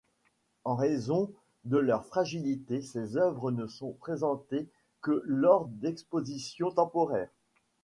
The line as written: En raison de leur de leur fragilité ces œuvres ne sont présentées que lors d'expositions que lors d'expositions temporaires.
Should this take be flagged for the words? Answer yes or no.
yes